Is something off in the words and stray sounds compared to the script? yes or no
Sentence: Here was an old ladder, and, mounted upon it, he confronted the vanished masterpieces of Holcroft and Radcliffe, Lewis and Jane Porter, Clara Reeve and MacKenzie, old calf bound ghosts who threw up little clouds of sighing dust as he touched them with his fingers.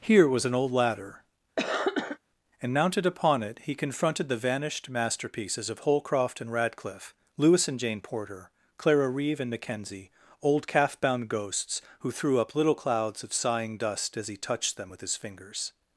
yes